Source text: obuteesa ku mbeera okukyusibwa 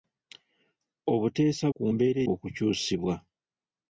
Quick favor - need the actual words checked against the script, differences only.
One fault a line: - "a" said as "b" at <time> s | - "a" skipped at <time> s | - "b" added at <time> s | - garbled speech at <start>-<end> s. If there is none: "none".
none